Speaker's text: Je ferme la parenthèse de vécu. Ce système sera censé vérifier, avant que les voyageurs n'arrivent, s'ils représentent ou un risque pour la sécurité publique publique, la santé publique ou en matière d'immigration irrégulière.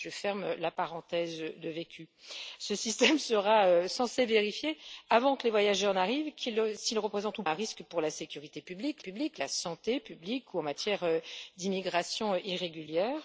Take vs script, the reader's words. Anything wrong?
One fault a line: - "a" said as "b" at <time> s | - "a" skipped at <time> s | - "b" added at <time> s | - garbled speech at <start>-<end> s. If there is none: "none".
none